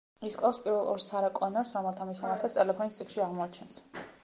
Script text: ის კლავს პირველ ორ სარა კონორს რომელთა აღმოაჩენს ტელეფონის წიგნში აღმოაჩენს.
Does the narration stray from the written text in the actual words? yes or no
yes